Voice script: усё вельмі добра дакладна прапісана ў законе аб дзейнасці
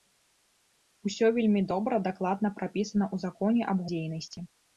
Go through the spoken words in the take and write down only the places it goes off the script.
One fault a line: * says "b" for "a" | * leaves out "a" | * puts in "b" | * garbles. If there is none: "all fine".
all fine